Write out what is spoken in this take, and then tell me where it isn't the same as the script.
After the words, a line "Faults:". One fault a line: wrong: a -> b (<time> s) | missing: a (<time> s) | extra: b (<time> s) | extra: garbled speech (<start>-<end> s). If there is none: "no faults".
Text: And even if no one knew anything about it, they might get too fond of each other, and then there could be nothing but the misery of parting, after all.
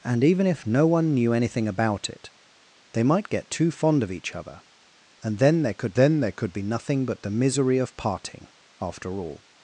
And even if no one knew anything about it, they might get too fond of each other, and then there could then there could be nothing but the misery of parting, after all.
Faults:
extra: then there could (5.9 s)